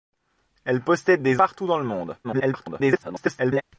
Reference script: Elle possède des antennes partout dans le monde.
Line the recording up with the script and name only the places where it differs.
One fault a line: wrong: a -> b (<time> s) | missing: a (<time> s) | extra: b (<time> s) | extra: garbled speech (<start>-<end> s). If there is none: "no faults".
missing: antennes (1.4 s)
extra: garbled speech (2.2-3.6 s)